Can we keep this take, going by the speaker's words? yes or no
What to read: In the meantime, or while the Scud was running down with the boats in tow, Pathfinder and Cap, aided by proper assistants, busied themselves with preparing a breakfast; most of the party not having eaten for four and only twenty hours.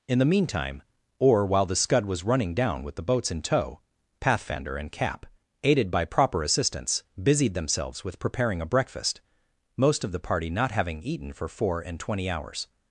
no